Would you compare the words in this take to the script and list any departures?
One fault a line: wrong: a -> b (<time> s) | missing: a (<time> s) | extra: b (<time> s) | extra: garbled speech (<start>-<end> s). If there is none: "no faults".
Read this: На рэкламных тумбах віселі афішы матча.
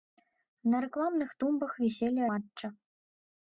missing: афішы (2.2 s)